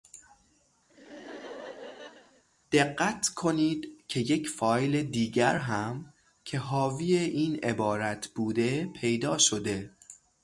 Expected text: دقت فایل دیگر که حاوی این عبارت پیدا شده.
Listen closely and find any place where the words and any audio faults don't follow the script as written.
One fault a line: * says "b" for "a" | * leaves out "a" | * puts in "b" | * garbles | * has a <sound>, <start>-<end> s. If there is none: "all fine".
* has a laugh, 0.9-2.4 s
* puts in "کنید که یک"
* puts in "هم"
* puts in "بوده"